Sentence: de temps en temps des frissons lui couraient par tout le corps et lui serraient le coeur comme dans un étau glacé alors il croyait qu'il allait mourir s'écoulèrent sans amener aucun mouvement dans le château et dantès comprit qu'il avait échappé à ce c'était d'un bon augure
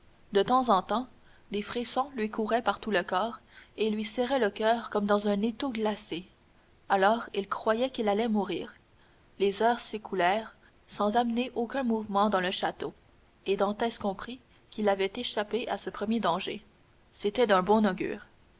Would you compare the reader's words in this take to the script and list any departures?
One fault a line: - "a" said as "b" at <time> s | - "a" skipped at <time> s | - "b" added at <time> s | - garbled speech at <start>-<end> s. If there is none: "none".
- "les heures" added at 9.4 s
- "premier danger" added at 15.9 s